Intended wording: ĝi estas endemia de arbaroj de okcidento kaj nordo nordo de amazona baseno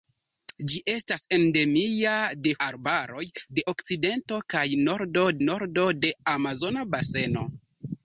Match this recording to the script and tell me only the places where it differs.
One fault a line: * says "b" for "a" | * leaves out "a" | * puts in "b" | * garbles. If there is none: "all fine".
all fine